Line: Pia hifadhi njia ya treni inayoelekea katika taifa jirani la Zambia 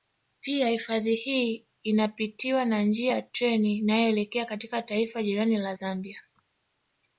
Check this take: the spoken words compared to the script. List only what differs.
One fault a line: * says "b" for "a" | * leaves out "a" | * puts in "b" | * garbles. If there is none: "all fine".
* puts in "hii inapitiwa na"